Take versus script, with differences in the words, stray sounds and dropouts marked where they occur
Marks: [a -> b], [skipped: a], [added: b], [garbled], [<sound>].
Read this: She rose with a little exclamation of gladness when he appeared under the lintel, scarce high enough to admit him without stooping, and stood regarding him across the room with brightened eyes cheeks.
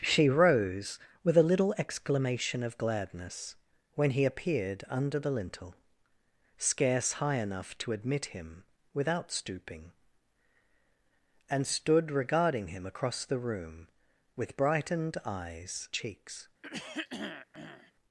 She rose with a little exclamation of gladness when he appeared under the lintel, scarce high enough to admit him without stooping, and stood regarding him across the room with brightened eyes cheeks. [throat clearing]